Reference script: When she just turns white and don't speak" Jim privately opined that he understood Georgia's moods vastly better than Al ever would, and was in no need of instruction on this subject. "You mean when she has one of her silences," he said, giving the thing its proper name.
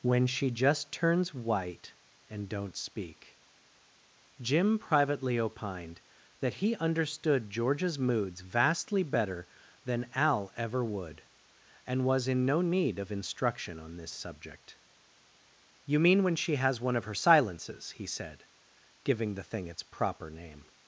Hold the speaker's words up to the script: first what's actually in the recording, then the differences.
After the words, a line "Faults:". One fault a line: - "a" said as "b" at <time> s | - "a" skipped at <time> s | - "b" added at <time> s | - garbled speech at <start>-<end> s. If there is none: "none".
When she just turns white and don't speak" Jim privately opined that he understood Georgia's moods vastly better than Al ever would, and was in no need of instruction on this subject. "You mean when she has one of her silences," he said, giving the thing its proper name.
Faults:
none